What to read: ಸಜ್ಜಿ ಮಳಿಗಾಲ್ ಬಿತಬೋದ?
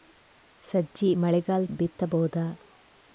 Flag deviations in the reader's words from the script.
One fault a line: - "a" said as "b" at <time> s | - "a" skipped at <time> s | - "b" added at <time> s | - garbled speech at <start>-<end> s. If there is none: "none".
none